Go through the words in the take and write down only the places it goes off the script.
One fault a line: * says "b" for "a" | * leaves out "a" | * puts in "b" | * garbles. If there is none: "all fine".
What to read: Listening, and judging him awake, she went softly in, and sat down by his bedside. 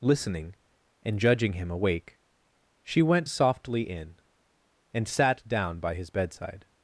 all fine